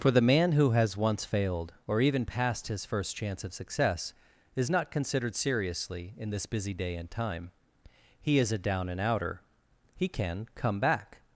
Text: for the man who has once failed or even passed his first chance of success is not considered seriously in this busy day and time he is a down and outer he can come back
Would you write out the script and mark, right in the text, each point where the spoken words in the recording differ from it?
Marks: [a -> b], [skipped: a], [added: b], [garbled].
for the man who has once failed or even passed his first chance of success is not considered seriously in this busy day and time he is a down and outer he can come back